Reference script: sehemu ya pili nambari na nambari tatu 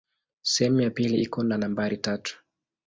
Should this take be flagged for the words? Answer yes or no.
yes